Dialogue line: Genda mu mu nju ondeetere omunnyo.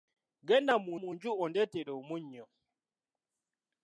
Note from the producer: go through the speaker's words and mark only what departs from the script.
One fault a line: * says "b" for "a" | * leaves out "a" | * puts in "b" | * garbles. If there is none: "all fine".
all fine